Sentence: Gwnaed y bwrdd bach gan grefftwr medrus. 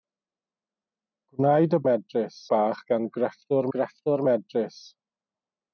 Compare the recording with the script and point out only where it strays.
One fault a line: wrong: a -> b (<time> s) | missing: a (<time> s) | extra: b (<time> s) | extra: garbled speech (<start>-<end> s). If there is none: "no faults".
wrong: bwrdd -> medrus (1.9 s)
extra: grefftwr (3.8 s)